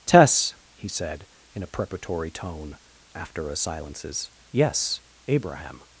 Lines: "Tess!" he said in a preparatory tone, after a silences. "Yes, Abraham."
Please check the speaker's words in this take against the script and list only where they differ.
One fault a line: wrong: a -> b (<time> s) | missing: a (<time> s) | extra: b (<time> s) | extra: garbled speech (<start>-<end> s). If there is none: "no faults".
no faults